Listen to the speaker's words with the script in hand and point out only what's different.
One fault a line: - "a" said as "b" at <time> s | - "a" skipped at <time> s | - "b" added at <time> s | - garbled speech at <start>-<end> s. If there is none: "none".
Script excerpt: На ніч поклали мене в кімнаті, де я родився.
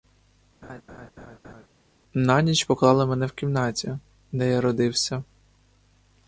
none